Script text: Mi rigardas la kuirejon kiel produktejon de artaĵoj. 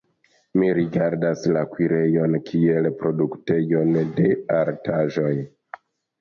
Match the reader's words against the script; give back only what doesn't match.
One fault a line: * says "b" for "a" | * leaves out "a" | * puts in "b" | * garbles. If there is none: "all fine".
all fine